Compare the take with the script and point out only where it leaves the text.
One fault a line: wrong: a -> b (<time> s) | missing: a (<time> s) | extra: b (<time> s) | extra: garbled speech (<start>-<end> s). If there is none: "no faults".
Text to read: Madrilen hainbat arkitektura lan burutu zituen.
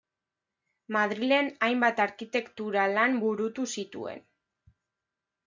no faults